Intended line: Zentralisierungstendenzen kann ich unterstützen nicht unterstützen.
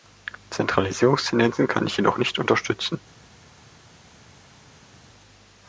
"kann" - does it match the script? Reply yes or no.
yes